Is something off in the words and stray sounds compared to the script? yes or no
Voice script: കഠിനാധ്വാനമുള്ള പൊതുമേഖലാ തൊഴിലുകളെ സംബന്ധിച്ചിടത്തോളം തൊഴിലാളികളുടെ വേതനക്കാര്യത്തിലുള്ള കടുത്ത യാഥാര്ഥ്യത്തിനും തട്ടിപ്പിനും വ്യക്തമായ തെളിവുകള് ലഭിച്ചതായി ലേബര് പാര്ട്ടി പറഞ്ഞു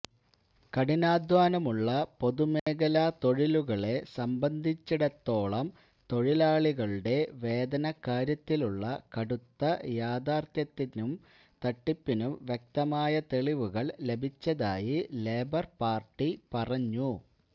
yes